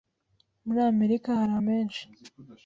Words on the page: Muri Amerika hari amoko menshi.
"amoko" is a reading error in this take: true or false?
true